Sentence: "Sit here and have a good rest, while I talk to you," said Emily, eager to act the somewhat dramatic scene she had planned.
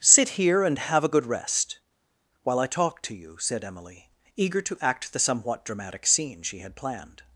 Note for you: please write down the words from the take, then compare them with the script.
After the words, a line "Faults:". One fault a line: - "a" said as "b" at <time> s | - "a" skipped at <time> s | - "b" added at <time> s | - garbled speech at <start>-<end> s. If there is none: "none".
"Sit here and have a good rest, while I talk to you," said Emily, eager to act the somewhat dramatic scene she had planned.
Faults:
none